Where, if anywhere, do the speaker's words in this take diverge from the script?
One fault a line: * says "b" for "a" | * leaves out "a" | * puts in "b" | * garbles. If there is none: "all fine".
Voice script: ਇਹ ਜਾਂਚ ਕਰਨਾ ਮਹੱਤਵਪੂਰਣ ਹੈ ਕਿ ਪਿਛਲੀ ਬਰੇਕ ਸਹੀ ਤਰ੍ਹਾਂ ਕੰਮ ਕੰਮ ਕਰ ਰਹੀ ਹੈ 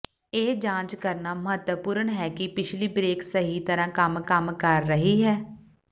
all fine